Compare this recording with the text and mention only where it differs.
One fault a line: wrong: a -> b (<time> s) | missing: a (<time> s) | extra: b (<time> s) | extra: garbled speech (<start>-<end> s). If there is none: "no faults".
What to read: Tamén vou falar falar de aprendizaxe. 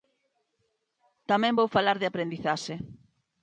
missing: falar (2.0 s)